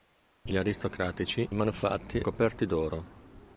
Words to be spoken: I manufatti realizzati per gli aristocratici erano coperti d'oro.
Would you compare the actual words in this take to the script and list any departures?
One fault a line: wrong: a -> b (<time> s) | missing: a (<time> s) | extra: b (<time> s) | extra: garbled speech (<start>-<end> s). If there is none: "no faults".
missing: manufatti realizzati per (0.5 s)
wrong: erano -> manufatti (1.5 s)